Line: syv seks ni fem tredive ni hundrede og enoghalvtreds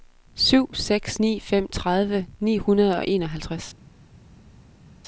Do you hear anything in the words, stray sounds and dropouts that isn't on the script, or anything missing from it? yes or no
no